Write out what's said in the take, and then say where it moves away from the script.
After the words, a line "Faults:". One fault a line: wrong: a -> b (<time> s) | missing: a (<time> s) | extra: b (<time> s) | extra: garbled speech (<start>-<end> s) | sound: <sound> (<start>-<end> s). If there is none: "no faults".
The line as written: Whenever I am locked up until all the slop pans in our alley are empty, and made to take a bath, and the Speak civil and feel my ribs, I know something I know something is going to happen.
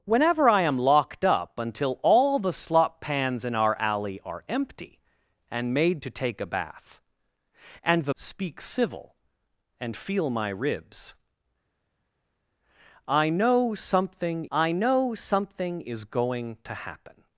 Whenever I am locked up until all the slop pans in our alley are empty, and made to take a bath, and the Speak civil and feel my ribs, I know something I know something is going to happen.
Faults:
no faults